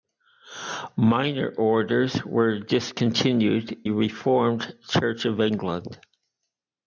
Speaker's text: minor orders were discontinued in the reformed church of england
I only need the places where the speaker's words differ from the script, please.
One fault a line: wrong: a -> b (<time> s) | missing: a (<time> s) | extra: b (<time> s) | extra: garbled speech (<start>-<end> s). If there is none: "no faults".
missing: in (3.9 s)